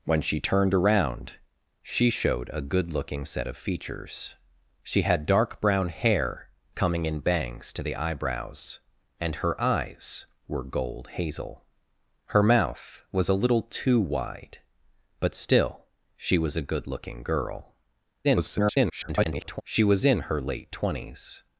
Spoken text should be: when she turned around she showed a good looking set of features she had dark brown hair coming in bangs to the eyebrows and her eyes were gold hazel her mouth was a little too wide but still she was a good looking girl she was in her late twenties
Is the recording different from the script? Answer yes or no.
yes